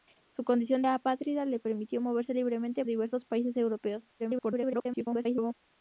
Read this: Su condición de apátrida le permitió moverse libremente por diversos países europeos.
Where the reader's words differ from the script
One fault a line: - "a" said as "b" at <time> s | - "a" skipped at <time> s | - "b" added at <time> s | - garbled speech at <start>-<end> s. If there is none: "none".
- "de" skipped at 0.8 s
- "por" skipped at 2.8 s
- garbled speech at 4.2-5.5 s